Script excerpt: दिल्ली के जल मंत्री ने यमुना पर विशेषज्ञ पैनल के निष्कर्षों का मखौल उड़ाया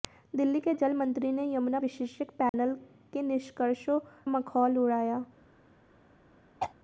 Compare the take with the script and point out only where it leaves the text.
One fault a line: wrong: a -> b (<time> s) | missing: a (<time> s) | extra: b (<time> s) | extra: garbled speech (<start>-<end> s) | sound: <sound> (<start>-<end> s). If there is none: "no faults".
missing: पर (1.8 s)
sound: dropout (2.5-2.5 s)
missing: का (4.0 s)
sound: throat clearing (6.6-6.7 s)